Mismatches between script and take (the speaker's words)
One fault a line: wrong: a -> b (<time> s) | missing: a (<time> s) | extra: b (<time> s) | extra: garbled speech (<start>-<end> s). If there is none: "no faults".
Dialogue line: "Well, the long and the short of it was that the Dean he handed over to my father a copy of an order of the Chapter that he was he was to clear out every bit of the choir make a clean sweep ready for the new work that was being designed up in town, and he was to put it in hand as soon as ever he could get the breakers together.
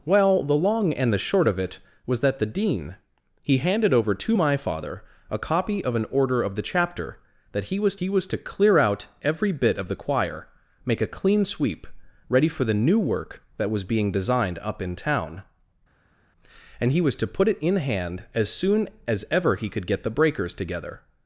no faults